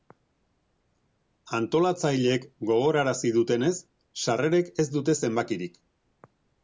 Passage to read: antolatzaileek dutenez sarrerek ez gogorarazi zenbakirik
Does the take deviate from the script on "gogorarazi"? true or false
true